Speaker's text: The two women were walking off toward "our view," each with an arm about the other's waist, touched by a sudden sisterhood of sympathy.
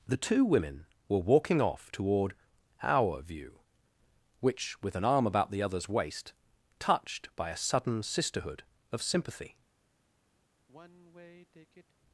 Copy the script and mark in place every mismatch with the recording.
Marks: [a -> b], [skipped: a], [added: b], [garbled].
The two women were walking off toward "our view," [each -> which] with an arm about the other's waist, touched by a sudden sisterhood of sympathy.